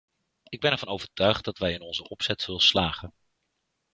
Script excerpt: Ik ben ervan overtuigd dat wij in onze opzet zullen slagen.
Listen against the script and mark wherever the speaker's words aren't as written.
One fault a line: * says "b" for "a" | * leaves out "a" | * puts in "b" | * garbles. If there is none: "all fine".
all fine